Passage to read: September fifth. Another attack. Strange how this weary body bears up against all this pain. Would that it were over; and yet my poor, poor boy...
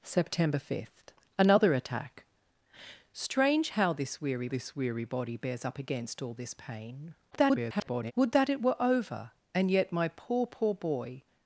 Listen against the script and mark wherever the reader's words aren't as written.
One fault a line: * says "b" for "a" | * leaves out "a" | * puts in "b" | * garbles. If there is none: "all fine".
* puts in "this weary"
* garbles